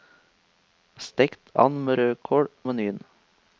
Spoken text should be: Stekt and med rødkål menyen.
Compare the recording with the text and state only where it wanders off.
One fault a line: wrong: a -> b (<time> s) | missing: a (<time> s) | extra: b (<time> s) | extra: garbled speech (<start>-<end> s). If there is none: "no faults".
no faults